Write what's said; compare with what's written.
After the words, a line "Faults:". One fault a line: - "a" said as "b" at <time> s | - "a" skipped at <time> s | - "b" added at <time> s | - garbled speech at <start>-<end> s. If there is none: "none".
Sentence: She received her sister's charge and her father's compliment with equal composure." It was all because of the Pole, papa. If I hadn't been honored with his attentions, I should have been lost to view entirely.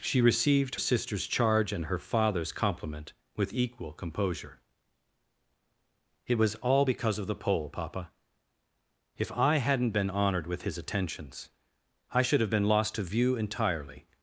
She received sister's charge and her father's compliment with equal composure." It was all because of the Pole, papa. If I hadn't been honored with his attentions, I should have been lost to view entirely.
Faults:
- "her" skipped at 0.8 s